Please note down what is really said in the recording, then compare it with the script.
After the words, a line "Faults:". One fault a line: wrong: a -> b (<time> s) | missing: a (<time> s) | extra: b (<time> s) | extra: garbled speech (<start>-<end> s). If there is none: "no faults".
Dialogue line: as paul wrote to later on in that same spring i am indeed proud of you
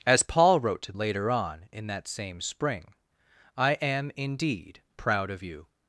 as paul wrote to later on in that same spring i am indeed proud of you
Faults:
no faults